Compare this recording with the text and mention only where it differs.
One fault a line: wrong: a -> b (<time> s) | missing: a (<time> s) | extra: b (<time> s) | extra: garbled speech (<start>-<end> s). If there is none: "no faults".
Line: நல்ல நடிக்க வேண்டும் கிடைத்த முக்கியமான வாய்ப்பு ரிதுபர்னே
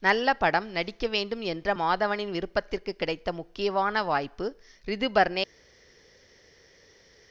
extra: படம் (0.3 s)
extra: என்ற மாதவனின் விருப்பத்திற்கு (1.4 s)